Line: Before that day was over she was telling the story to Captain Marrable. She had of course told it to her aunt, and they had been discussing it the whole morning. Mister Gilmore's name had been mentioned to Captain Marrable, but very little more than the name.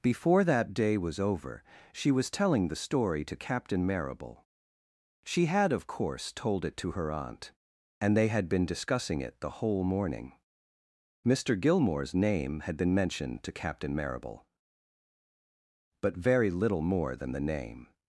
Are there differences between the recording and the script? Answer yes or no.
no